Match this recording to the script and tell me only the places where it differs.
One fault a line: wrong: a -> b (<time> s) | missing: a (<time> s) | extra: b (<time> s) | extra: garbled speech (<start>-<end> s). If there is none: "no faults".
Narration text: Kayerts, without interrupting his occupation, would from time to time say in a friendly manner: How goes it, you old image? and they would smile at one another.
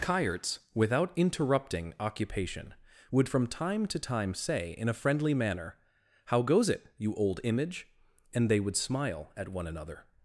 missing: his (1.9 s)